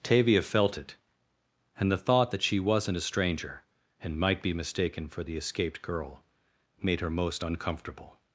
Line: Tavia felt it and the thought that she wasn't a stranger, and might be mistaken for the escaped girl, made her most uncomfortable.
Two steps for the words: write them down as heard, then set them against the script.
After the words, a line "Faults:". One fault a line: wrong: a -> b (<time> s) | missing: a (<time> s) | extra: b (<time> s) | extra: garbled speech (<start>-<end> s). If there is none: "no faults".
Tavia felt it and the thought that she wasn't a stranger, and might be mistaken for the escaped girl, made her most uncomfortable.
Faults:
no faults